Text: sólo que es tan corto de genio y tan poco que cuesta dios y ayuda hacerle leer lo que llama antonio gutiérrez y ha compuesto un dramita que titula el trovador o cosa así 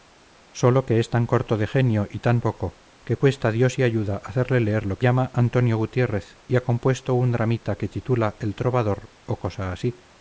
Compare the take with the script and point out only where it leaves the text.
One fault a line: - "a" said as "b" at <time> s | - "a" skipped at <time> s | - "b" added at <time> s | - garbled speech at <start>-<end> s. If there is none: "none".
none